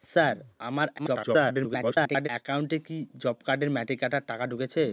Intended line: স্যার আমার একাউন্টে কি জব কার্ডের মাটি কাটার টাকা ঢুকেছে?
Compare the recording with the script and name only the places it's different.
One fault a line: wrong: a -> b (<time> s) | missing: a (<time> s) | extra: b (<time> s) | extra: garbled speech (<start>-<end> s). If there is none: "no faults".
extra: garbled speech (1.0-2.3 s)